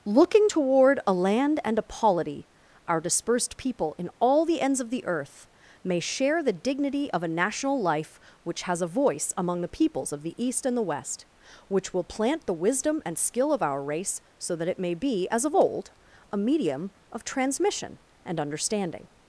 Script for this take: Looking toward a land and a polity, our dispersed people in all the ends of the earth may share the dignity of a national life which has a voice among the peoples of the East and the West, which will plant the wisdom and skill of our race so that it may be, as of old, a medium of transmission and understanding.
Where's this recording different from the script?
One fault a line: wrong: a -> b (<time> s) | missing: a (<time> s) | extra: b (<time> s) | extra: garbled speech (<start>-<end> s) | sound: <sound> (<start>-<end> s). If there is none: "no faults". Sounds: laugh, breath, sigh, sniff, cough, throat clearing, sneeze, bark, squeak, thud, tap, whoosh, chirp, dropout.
no faults